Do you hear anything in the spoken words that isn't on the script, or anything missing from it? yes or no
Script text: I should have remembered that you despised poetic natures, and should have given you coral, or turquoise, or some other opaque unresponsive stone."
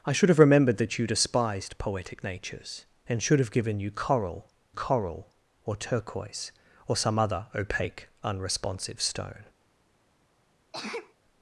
yes